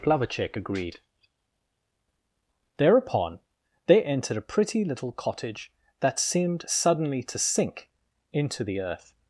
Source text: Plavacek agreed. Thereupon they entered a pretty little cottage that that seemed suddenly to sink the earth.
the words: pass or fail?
fail